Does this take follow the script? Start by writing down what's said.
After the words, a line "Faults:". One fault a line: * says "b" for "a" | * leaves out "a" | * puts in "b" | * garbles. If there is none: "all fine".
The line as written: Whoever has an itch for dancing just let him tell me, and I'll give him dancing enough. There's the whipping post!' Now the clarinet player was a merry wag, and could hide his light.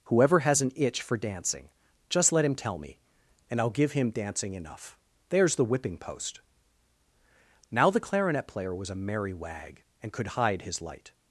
Whoever has an itch for dancing just let him tell me, and I'll give him dancing enough. There's the whipping post!' Now the clarinet player was a merry wag, and could hide his light.
Faults:
all fine